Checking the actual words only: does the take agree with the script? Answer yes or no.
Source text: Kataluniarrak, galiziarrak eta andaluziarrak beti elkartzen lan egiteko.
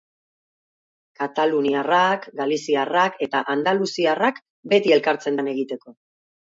yes